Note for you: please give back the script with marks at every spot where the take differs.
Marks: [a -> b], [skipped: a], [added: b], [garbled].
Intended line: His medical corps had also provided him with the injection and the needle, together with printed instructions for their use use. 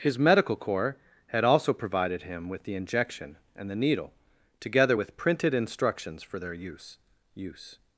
His medical corps had also provided him with the injection and the needle, together with printed instructions for their use use.